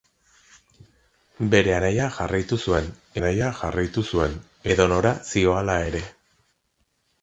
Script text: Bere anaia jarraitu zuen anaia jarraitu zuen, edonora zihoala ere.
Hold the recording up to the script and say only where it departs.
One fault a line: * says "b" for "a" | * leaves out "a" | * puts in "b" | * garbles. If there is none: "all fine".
all fine